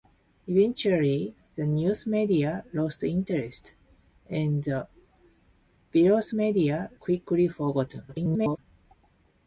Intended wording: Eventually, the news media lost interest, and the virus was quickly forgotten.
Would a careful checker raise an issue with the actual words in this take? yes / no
yes